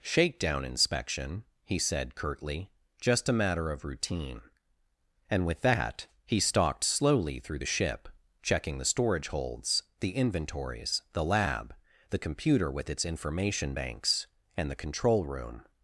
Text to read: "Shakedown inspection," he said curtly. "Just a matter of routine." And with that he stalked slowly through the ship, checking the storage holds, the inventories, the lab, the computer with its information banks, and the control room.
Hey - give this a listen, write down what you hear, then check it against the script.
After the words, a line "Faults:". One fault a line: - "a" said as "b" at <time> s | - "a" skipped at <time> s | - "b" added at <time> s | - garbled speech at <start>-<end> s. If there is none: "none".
"Shakedown inspection," he said curtly. "Just a matter of routine." And with that he stalked slowly through the ship, checking the storage holds, the inventories, the lab, the computer with its information banks, and the control room.
Faults:
none